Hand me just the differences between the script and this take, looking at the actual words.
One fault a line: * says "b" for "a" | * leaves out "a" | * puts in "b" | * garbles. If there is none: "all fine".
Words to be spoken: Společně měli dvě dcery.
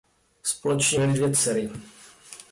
all fine